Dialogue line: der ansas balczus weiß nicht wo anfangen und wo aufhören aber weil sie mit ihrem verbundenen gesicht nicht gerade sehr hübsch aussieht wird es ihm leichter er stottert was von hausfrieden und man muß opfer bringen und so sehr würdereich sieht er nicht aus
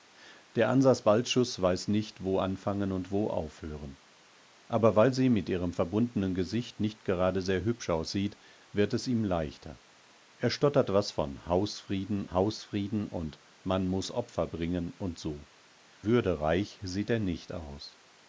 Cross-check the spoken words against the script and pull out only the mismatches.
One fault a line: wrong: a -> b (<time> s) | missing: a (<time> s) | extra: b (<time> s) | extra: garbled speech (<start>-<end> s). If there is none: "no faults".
extra: hausfrieden (12.3 s)
missing: sehr (15.5 s)